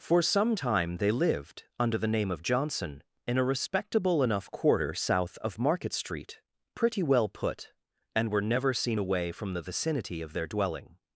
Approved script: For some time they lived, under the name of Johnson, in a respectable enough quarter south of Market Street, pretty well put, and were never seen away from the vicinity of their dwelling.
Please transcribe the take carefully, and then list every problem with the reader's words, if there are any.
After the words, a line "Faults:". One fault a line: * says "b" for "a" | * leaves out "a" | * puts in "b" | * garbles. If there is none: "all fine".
For some time they lived, under the name of Johnson, in a respectable enough quarter south of Market Street, pretty well put, and were never seen away from the vicinity of their dwelling.
Faults:
all fine